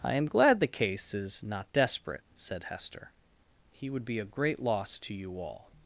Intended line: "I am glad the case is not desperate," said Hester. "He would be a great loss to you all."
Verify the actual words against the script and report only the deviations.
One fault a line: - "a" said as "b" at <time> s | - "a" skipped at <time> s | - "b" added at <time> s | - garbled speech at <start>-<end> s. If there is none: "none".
none